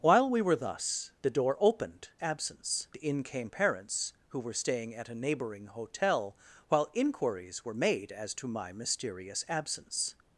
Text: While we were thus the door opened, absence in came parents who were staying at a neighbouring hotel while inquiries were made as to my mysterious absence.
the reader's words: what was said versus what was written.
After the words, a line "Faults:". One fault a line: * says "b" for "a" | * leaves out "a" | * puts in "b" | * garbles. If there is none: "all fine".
While we were thus the door opened, absence in came parents who were staying at a neighbouring hotel while inquiries were made as to my mysterious absence.
Faults:
all fine